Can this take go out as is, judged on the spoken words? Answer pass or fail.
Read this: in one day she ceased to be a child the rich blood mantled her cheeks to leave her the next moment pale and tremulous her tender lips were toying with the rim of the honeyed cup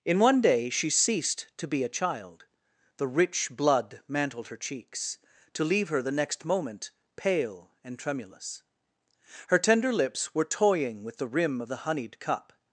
pass